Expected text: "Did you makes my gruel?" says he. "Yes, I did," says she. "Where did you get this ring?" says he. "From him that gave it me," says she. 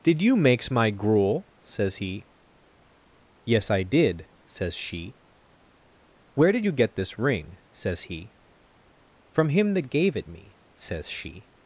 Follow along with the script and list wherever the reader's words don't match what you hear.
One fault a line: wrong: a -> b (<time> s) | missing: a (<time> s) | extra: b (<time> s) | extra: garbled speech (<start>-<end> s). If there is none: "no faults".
no faults